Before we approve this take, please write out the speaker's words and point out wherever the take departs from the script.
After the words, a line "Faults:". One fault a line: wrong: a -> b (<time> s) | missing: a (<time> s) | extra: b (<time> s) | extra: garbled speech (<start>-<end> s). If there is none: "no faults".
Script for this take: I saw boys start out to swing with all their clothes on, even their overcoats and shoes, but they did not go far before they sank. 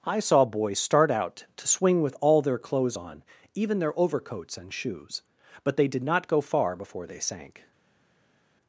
I saw boys start out to swing with all their clothes on, even their overcoats and shoes, but they did not go far before they sank.
Faults:
no faults